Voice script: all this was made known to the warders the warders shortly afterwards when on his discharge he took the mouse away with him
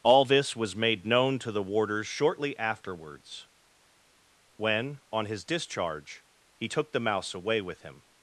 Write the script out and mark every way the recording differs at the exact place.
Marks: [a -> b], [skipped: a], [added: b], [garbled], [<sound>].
all this was made known to the warders [skipped: the warders] shortly afterwards when on his discharge he took the mouse away with him